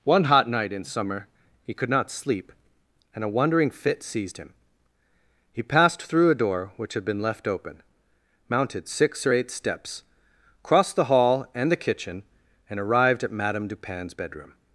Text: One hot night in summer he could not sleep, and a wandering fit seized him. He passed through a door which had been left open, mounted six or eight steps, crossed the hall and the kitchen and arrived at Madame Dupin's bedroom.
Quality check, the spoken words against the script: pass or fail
pass